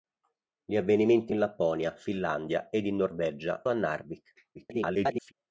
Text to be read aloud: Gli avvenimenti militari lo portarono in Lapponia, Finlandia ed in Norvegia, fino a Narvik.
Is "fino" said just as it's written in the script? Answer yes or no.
no